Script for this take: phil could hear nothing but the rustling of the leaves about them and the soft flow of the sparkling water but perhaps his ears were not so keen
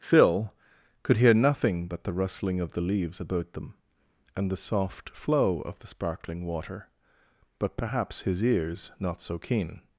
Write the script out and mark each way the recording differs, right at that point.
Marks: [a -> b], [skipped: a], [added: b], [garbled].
phil could hear nothing but the rustling of the leaves about them and the soft flow of the sparkling water but perhaps his ears [skipped: were] not so keen